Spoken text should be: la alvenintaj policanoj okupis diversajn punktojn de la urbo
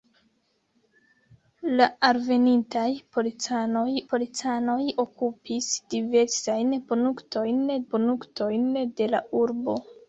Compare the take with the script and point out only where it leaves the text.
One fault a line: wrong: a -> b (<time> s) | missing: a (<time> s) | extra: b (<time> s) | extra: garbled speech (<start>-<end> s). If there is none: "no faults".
extra: policanoj (4.1 s)
extra: punktojn (7.9 s)